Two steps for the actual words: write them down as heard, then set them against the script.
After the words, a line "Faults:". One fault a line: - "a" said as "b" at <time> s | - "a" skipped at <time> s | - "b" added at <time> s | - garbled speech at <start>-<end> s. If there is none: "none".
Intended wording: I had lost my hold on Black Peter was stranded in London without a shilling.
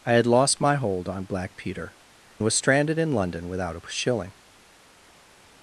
I had lost my hold on Black Peter was stranded in London without a shilling.
Faults:
none